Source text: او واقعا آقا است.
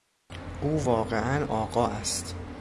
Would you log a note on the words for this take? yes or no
no